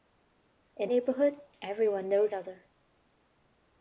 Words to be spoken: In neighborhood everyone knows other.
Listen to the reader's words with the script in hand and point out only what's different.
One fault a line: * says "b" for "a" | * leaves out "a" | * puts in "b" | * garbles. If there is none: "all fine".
all fine